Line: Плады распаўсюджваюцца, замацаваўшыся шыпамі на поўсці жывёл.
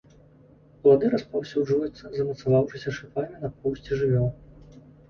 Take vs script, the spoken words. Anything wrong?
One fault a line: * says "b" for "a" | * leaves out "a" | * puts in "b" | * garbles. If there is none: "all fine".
all fine